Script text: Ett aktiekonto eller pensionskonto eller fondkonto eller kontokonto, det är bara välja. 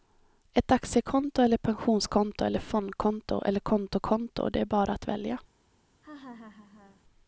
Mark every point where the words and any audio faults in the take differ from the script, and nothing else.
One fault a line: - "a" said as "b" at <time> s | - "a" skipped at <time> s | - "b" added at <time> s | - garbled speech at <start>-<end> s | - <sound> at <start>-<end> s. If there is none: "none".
- "att" added at 4.9 s
- laugh at 6.0-7.0 s